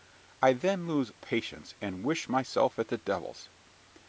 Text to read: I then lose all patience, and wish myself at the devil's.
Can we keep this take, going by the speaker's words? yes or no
no